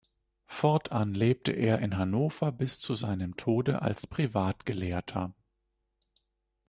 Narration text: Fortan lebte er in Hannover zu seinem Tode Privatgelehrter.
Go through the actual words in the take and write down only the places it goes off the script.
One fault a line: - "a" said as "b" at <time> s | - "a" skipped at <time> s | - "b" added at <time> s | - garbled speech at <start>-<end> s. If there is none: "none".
- "bis" added at 2.5 s
- "als" added at 3.8 s